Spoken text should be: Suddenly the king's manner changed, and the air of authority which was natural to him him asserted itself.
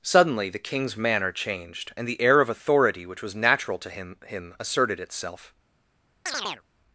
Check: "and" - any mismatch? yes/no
no